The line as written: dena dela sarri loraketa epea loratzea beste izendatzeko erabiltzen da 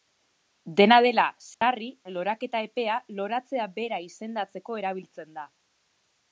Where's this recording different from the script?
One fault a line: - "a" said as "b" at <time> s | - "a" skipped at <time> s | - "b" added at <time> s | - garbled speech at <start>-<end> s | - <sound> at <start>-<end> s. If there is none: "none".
- dropout at 1.5-1.6 s
- "beste" said as "bera" at 3.8 s